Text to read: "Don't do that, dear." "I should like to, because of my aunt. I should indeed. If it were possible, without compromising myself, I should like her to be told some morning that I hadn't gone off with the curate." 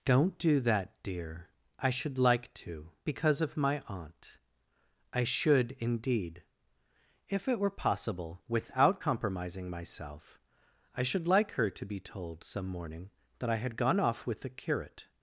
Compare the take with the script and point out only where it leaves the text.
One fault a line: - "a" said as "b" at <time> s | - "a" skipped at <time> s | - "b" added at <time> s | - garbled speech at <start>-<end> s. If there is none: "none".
- "hadn't" said as "had" at 13.6 s